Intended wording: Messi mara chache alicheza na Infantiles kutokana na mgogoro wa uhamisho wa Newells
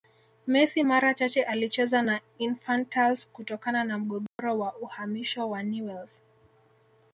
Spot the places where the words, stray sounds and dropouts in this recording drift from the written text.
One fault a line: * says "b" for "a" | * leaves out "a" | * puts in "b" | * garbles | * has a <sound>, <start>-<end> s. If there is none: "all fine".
* has a dropout, 4.3-4.4 s